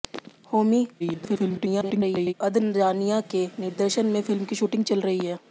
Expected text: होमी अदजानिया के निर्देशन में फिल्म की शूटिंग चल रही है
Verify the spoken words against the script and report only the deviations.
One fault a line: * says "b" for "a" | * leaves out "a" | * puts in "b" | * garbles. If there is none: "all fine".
* garbles